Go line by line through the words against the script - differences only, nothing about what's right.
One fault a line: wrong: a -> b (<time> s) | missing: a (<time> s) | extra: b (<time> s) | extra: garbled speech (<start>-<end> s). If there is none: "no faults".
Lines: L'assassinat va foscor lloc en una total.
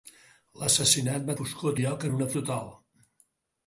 no faults